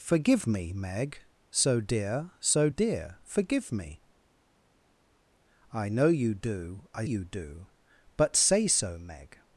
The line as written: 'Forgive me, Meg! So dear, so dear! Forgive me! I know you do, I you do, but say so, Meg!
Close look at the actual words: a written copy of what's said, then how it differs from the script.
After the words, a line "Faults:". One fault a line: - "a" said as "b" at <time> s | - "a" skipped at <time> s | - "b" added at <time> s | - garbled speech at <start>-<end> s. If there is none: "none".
'Forgive me, Meg! So dear, so dear! Forgive me! I know you do, I you do, but say so, Meg!
Faults:
none